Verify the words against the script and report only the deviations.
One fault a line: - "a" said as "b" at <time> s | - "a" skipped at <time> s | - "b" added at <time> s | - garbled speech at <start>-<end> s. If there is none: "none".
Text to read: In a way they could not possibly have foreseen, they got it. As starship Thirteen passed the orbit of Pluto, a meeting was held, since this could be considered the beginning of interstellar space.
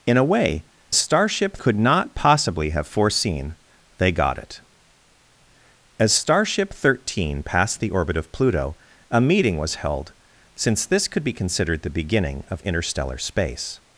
- "they" said as "starship" at 0.9 s